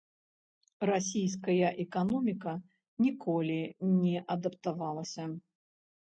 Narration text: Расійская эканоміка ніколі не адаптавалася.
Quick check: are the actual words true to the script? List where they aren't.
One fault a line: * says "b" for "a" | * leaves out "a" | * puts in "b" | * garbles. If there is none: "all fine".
all fine